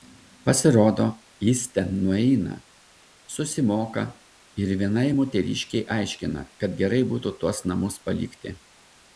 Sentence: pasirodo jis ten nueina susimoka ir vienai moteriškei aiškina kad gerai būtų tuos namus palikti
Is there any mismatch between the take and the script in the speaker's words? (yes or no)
no